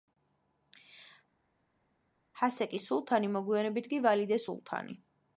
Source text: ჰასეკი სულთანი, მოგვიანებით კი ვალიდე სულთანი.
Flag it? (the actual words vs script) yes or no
no